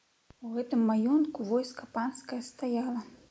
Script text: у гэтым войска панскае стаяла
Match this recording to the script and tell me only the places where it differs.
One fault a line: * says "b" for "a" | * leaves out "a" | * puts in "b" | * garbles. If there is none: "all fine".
* puts in "маёнтку"